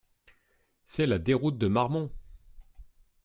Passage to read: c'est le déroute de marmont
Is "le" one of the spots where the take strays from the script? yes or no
yes